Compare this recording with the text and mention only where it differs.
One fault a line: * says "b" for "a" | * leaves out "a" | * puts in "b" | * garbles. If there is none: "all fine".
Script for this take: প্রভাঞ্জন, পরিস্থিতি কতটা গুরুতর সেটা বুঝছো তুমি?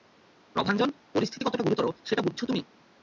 all fine